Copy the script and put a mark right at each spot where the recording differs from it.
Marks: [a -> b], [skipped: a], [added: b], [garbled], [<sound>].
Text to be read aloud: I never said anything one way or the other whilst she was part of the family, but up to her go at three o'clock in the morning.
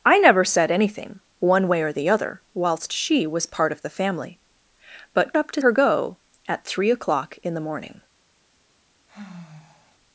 I never said anything one way or the other whilst she was part of the family, but up to her go at three o'clock in the morning. [sigh]